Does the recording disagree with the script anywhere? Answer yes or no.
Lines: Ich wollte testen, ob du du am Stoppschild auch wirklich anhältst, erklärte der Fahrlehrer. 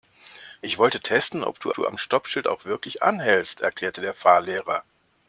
no